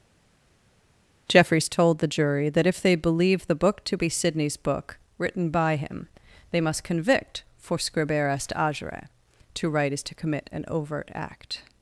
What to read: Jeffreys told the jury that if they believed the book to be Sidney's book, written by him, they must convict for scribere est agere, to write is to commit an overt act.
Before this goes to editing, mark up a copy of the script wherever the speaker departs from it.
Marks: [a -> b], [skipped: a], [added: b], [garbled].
Jeffreys told the jury that if they believed the book to be Sidney's book, written by him, they must convict for scribere est agere, to write is to commit an overt act.